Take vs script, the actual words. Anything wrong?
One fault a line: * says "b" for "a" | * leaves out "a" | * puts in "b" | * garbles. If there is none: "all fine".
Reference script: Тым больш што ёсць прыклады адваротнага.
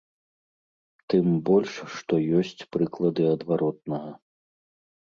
all fine